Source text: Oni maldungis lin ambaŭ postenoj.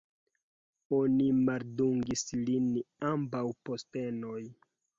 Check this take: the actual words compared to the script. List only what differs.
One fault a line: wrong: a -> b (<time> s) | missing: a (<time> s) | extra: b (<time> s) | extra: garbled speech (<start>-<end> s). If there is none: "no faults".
no faults